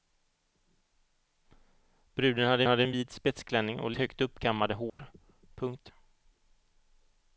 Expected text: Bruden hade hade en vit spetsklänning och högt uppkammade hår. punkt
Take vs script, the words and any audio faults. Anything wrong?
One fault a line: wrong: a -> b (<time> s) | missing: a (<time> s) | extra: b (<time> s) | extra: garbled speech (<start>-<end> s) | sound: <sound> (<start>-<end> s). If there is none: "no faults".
sound: dropout (4.9-5.0 s)